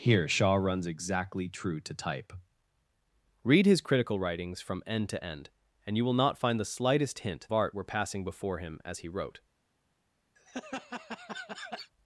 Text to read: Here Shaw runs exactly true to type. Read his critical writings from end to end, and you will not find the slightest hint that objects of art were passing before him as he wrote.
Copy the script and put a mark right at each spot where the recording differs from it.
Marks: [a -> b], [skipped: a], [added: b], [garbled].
Here Shaw runs exactly true to type. Read his critical writings from end to end, and you will not find the slightest hint [skipped: that objects of] art were passing before him as he wrote.